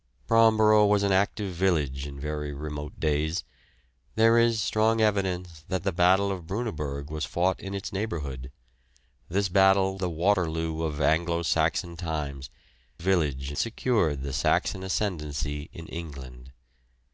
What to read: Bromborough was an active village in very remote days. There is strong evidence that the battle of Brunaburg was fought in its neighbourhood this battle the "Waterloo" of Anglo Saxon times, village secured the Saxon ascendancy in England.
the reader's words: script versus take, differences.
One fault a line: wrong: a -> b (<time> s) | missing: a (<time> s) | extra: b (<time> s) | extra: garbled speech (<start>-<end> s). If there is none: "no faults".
no faults